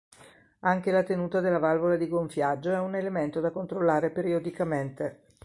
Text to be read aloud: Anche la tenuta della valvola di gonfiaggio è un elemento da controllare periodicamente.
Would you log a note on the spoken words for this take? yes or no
no